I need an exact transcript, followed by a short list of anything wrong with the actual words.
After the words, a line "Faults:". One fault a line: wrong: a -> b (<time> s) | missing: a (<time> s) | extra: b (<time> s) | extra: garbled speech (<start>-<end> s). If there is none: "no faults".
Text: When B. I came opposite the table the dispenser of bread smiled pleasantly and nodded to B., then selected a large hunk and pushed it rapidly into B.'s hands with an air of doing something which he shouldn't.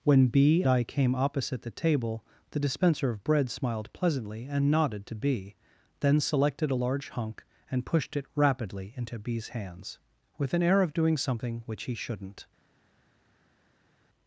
When B. I came opposite the table the dispenser of bread smiled pleasantly and nodded to B., then selected a large hunk and pushed it rapidly into B.'s hands with an air of doing something which he shouldn't.
Faults:
no faults